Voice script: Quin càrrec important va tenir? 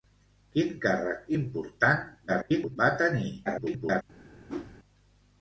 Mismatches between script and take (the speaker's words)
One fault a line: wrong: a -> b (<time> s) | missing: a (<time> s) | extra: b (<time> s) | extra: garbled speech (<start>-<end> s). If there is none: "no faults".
extra: garbled speech (2.3-2.8 s)
extra: garbled speech (3.4-4.0 s)